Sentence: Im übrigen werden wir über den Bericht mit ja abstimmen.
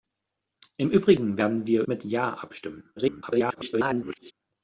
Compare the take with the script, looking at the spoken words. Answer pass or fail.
fail